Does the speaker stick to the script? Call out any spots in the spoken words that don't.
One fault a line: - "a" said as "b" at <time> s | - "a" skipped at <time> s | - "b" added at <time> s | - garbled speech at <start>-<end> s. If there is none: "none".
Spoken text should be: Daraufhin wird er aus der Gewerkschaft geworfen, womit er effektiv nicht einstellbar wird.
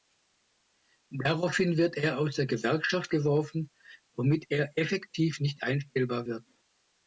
none